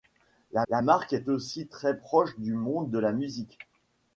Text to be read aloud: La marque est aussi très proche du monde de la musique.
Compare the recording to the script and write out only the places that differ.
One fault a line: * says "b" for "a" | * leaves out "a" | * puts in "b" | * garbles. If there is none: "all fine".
* puts in "la"